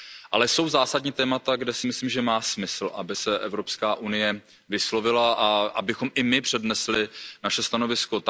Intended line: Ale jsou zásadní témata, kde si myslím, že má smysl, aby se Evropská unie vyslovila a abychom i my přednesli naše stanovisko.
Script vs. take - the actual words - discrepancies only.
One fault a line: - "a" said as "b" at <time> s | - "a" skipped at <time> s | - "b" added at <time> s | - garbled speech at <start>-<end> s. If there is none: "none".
none